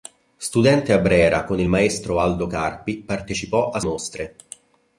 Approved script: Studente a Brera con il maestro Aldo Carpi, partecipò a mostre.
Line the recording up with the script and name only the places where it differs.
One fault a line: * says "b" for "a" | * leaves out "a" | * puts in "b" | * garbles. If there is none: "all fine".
all fine